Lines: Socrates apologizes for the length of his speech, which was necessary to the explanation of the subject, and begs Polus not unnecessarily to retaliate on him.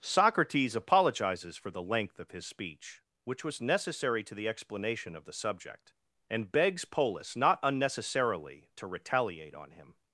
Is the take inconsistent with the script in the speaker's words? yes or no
no